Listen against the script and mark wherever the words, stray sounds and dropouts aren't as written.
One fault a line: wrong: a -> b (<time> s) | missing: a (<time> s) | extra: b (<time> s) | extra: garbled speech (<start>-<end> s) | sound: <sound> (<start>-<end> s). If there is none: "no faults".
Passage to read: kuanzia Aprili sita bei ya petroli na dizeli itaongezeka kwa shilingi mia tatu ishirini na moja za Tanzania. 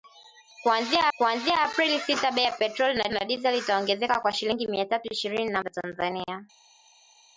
extra: kuanzia (1.2 s)
extra: na (3.1 s)
missing: moja (5.6 s)